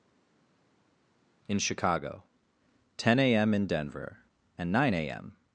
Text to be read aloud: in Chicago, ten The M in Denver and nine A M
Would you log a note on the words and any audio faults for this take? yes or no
yes